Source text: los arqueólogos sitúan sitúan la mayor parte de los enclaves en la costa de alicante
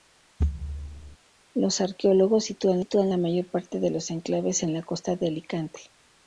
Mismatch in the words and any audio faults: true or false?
true